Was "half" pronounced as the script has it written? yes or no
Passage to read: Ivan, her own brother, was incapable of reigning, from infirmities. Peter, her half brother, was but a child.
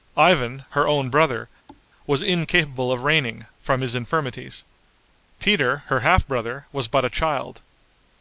yes